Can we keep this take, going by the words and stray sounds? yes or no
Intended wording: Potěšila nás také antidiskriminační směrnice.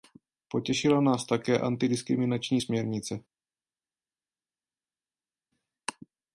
yes